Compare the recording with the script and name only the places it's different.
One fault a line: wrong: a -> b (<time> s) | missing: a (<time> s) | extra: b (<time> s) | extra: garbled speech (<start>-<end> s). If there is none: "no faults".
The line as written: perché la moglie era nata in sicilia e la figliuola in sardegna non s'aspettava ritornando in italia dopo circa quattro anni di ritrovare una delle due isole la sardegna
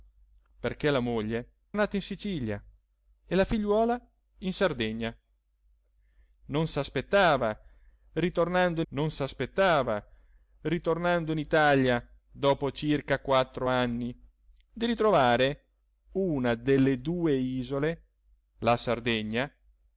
missing: era (1.5 s)
extra: non s'aspettava ritornando (8.9 s)